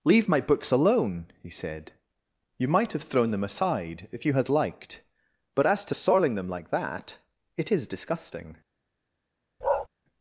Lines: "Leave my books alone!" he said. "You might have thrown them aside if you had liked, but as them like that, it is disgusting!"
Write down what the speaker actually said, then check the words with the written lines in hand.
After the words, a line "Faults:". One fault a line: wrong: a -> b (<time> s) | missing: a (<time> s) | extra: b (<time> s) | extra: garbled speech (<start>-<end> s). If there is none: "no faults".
"Leave my books alone!" he said. "You might have thrown them aside if you had liked, but as to soiling them like that, it is disgusting!"
Faults:
extra: to soiling (5.8 s)